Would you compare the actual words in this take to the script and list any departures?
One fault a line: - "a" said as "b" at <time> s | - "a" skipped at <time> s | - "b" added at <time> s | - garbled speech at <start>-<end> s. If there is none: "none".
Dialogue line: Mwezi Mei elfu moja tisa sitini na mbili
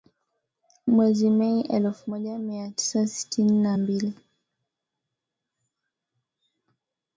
- "mia" added at 2.4 s